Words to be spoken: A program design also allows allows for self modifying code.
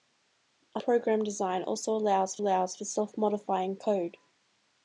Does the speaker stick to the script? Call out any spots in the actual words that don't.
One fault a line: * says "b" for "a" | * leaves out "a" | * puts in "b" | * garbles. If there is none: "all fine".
all fine